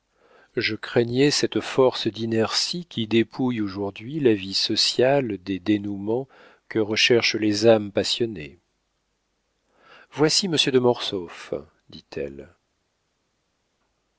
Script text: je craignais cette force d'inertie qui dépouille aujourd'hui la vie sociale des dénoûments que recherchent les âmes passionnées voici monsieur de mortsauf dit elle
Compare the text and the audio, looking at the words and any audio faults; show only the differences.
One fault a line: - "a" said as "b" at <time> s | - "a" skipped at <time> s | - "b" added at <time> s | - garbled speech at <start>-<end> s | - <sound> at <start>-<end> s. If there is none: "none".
none